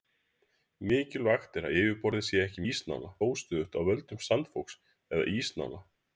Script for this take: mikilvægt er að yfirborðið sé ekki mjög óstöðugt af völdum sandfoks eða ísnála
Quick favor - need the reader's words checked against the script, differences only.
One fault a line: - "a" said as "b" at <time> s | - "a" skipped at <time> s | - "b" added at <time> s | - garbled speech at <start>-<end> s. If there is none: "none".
- "mjög" said as "ísnála" at 2.7 s